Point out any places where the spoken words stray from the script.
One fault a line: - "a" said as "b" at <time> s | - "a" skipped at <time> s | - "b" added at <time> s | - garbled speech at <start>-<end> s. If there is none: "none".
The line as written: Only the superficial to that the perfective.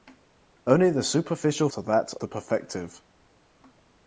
none